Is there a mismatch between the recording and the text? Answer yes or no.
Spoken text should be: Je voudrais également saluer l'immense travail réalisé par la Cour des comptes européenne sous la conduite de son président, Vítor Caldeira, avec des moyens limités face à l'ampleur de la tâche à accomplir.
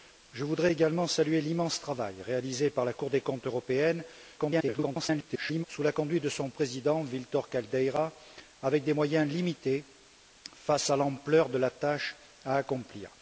yes